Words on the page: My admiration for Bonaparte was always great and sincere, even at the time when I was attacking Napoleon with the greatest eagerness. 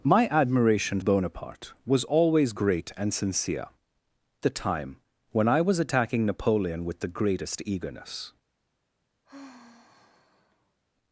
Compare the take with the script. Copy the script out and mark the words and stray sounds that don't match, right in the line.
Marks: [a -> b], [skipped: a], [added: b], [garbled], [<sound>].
My admiration [skipped: for] Bonaparte was always great and sincere, [skipped: even at] the time when I was attacking Napoleon with the greatest eagerness. [sigh]